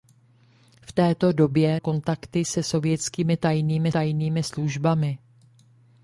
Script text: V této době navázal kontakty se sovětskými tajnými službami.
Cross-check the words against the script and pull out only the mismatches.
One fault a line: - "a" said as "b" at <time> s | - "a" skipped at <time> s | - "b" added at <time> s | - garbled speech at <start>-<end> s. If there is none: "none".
- "navázal" skipped at 1.8 s
- "tajnými" added at 3.9 s